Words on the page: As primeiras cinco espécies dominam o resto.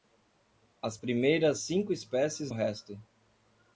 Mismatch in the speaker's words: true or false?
true